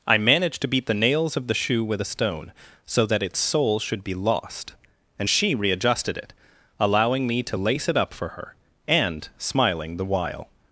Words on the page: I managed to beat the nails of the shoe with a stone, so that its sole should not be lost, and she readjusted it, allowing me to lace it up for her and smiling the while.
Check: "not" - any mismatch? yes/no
yes